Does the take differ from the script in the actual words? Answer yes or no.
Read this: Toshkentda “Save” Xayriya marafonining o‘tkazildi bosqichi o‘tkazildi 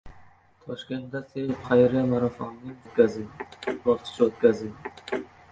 no